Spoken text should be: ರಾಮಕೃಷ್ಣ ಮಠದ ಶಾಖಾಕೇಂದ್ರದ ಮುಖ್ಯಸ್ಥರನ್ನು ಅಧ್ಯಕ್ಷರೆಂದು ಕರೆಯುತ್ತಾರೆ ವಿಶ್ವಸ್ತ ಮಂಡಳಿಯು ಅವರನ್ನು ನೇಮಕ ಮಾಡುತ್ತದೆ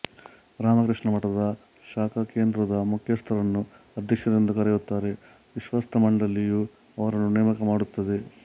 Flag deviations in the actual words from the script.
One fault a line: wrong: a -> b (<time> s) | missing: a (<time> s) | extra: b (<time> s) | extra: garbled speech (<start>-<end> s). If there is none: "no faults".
no faults